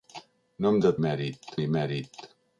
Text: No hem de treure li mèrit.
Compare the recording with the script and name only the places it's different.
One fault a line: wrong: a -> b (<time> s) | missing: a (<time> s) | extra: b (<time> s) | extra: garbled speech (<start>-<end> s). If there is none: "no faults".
wrong: treure -> mèrit (1.1 s)